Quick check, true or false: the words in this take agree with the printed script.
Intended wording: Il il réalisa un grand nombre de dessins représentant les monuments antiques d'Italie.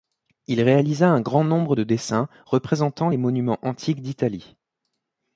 false